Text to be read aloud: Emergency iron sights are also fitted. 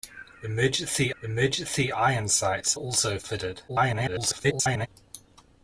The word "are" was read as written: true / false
false